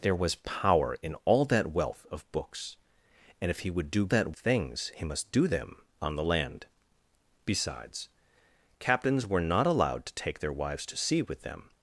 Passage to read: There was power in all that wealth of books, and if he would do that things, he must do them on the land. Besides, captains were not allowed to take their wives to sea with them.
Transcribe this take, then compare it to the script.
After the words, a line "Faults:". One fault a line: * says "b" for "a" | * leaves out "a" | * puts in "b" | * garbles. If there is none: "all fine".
There was power in all that wealth of books, and if he would do that things, he must do them on the land. Besides, captains were not allowed to take their wives to sea with them.
Faults:
all fine